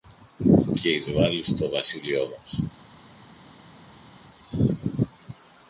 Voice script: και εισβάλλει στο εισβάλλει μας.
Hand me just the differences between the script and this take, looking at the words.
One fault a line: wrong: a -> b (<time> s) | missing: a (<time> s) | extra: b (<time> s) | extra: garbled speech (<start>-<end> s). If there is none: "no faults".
wrong: εισβάλλει -> βασίλειό (1.7 s)